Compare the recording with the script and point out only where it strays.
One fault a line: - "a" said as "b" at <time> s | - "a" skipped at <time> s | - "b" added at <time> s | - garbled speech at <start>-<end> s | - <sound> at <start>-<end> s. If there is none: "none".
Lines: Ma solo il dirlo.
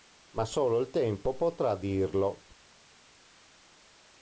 - "tempo potrà" added at 0.9 s